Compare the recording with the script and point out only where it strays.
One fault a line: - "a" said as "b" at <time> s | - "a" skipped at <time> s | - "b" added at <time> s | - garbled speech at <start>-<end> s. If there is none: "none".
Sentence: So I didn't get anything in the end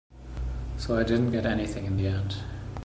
none